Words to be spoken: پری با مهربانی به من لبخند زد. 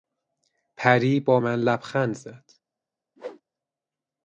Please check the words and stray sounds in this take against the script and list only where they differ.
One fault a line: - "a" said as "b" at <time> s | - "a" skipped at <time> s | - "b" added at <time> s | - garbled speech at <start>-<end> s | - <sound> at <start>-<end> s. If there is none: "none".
- "مهربانی به" skipped at 1.4 s
- whoosh at 3.2-3.4 s